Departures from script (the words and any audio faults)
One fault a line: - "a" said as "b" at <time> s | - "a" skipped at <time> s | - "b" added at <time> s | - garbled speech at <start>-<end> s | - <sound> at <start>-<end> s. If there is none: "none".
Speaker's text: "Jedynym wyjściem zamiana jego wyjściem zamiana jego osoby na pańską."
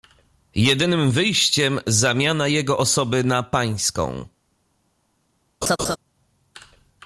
- "wyjściem zamiana jego" skipped at 2.8 s
- laugh at 5.6-6.0 s